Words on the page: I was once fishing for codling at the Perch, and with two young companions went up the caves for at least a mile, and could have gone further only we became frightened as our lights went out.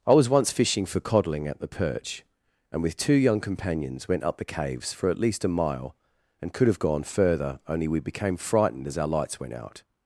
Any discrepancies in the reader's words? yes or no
no